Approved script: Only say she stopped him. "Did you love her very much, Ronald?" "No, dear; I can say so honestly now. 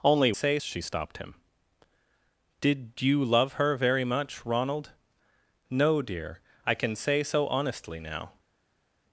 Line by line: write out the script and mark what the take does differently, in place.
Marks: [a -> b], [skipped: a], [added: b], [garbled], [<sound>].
Only say she stopped him. "Did you love her very much, Ronald?" "No, dear; I can say so honestly now.